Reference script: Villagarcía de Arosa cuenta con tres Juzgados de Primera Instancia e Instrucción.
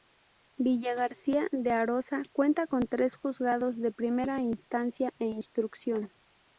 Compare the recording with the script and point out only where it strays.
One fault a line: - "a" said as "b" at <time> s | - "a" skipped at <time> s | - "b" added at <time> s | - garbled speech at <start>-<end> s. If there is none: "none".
none